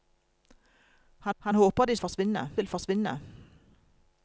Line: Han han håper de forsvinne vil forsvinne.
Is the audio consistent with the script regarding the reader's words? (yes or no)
yes